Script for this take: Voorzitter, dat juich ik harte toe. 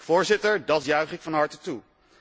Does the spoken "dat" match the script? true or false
true